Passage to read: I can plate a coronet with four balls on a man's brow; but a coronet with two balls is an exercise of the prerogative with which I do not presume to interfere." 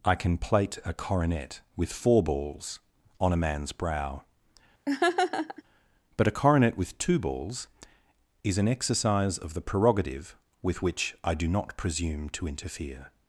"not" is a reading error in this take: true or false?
false